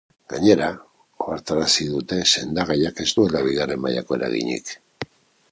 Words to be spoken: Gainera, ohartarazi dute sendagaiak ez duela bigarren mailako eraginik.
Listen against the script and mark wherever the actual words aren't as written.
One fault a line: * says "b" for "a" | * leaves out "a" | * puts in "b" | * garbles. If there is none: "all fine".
all fine